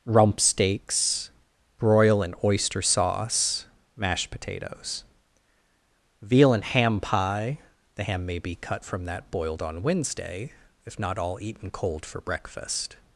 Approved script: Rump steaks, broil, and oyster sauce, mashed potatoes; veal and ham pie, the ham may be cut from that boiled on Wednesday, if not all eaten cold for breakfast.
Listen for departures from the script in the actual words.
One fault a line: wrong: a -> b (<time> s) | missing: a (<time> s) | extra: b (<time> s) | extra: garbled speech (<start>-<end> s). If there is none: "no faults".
no faults